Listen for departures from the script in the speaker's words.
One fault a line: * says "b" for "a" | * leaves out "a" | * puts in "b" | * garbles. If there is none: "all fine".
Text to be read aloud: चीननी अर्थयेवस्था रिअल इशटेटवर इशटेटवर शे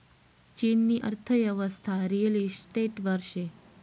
* leaves out "इशटेटवर"